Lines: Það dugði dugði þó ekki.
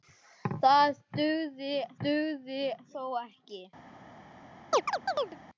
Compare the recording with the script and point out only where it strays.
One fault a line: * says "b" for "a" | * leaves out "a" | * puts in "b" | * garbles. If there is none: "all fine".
all fine